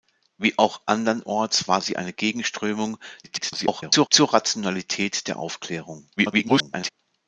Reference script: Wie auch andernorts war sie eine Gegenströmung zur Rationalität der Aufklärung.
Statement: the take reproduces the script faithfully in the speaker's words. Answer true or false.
false